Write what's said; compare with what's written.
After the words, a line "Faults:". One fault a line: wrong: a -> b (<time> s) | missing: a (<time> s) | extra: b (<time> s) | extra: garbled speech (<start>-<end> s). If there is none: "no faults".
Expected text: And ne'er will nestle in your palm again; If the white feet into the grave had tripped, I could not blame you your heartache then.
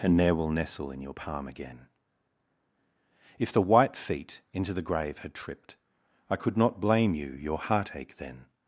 And ne'er will nestle in your palm again; If the white feet into the grave had tripped, I could not blame you your heartache then.
Faults:
no faults